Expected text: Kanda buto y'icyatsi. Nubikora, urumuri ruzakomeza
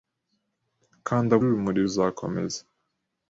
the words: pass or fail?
fail